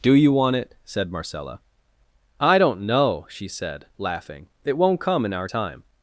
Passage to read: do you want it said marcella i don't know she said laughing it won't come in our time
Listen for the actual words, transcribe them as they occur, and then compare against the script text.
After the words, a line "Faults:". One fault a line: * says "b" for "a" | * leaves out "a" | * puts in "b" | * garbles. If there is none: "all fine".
do you want it said marcella i don't know she said laughing it won't come in our time
Faults:
all fine